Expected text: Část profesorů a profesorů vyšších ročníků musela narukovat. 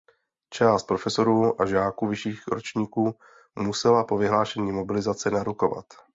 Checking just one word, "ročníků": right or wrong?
right